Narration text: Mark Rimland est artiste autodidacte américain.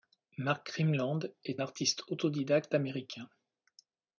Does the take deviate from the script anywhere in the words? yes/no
no